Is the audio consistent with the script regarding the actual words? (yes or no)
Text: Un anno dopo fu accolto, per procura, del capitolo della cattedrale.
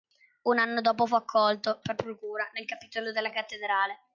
no